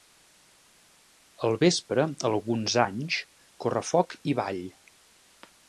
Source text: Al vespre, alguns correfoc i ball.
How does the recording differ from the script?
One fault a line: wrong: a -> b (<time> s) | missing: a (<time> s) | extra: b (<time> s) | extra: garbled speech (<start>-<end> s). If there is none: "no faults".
extra: anys (2.8 s)